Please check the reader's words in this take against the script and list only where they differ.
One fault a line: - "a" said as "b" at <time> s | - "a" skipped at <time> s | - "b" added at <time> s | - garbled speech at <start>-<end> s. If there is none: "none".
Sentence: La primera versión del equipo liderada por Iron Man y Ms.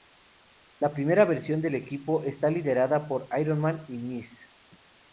- "está" added at 2.2 s